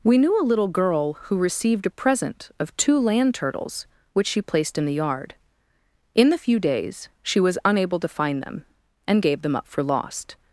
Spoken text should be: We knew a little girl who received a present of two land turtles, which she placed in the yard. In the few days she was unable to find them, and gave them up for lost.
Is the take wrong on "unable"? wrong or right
right